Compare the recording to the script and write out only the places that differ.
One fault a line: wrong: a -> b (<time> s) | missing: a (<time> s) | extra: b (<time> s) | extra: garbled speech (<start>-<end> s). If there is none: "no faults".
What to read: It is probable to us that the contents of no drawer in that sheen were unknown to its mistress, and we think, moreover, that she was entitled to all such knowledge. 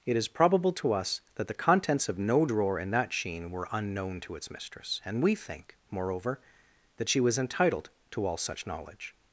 no faults